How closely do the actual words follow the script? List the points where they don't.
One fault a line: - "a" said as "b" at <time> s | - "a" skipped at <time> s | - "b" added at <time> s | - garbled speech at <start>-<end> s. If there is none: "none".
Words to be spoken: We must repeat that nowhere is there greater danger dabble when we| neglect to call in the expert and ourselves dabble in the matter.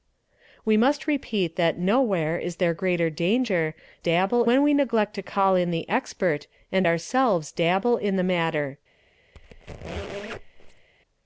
none